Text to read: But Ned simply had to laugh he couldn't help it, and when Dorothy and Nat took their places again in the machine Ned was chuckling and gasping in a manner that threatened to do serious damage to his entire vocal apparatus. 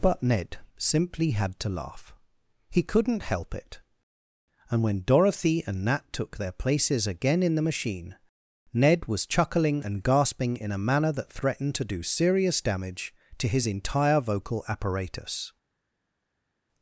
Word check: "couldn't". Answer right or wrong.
right